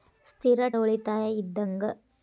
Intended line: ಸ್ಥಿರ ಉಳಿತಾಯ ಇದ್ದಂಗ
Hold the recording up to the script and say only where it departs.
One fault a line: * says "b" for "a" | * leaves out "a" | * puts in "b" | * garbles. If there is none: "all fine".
all fine